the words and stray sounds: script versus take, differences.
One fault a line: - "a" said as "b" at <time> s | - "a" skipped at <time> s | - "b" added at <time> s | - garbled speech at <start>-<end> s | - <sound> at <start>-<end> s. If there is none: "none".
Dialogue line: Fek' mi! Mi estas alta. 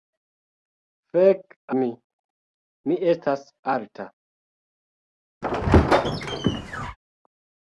- squeak at 5.4-7.0 s